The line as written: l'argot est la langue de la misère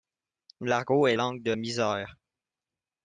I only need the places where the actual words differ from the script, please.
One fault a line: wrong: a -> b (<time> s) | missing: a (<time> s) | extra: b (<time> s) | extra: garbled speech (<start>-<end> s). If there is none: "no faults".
missing: la (1.1 s)
missing: la (1.5 s)